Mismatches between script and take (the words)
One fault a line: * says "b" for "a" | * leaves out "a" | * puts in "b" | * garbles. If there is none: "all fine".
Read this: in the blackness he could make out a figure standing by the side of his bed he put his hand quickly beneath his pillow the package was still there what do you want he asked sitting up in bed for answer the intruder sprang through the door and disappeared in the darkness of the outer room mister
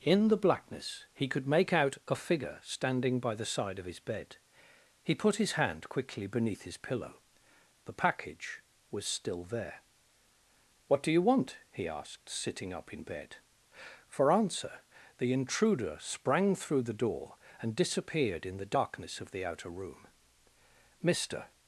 all fine